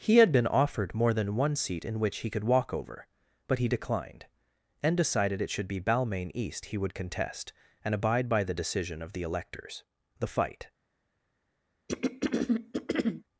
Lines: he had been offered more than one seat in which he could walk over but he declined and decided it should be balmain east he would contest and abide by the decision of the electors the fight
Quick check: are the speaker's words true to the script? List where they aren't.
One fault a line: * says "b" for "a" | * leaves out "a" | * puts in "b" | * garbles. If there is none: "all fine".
all fine